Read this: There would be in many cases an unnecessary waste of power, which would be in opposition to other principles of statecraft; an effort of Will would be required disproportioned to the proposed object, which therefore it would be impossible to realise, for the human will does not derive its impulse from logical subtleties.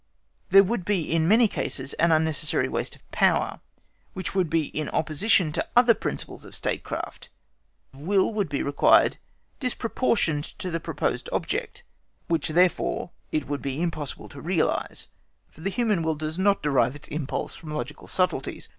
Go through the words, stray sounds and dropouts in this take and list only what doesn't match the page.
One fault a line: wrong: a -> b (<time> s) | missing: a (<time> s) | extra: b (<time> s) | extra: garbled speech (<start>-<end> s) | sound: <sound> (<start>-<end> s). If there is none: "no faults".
missing: an effort (7.3 s)